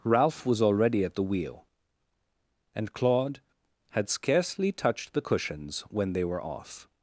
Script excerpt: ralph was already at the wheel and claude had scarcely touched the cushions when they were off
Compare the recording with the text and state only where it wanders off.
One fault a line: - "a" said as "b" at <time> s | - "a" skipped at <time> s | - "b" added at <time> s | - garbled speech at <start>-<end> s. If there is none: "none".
none